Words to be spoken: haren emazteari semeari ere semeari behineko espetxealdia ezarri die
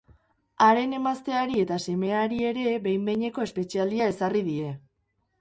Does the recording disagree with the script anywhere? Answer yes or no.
yes